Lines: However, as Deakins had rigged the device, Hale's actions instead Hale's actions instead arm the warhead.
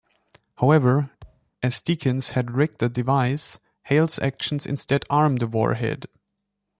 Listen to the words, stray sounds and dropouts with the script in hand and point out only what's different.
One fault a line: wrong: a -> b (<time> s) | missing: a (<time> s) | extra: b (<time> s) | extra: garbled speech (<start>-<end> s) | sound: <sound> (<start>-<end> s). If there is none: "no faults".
sound: thud (1.2-1.5 s)
missing: Hale's actions instead (5.0 s)